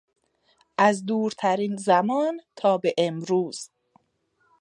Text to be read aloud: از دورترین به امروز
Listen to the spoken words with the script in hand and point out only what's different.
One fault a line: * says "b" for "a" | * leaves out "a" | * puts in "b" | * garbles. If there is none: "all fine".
* puts in "زمان تا"